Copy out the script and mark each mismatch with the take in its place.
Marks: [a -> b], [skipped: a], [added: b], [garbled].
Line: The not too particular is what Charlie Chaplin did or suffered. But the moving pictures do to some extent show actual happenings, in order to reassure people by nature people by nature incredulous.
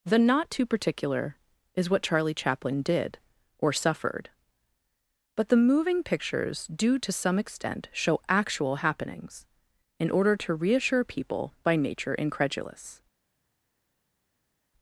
The not too particular is what Charlie Chaplin did or suffered. But the moving pictures do to some extent show actual happenings, in order to reassure people by nature [skipped: people by nature] incredulous.